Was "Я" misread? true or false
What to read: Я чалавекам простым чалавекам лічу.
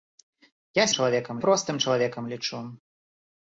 false